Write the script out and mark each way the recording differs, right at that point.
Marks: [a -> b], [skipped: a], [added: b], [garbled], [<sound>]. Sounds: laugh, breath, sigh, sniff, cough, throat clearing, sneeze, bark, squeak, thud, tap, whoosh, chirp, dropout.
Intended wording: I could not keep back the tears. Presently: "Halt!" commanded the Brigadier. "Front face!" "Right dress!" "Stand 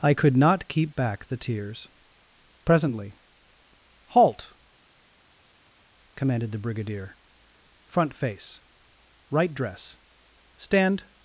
I could not keep back the tears. Presently: "Halt!" commanded the Brigadier. "Front face!" "Right dress!" "Stand